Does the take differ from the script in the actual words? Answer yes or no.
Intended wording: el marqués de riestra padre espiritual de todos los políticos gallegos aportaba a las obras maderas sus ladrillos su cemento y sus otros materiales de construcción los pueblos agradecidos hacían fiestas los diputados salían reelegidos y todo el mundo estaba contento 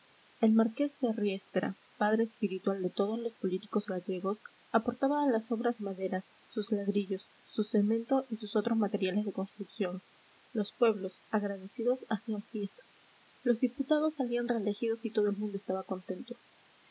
no